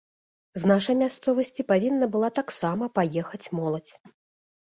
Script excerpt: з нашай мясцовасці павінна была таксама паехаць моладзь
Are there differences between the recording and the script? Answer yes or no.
no